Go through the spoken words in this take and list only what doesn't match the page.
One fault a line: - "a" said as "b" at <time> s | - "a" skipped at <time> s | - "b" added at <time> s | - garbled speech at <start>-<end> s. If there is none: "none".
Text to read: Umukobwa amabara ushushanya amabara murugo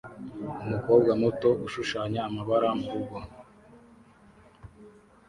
- "amabara" said as "muto" at 1.2 s